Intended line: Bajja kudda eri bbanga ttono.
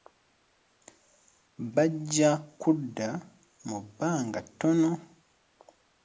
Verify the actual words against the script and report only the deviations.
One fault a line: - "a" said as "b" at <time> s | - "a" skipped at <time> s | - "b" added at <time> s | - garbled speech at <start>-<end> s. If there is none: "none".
- "eri" said as "mu" at 3.7 s